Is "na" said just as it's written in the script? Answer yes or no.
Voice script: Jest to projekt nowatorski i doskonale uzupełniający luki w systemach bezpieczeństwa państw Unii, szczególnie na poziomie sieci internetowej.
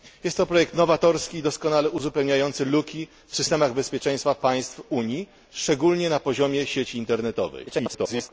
yes